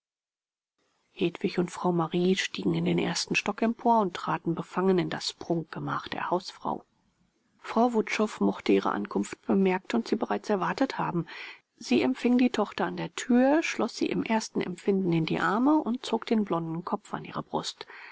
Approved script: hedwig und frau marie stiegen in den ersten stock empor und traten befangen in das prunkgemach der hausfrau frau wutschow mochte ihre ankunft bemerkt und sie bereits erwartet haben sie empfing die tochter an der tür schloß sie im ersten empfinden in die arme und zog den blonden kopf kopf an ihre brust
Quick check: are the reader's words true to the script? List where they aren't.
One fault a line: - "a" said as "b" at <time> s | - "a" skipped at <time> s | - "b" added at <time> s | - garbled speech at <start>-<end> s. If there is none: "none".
- "kopf" skipped at 17.1 s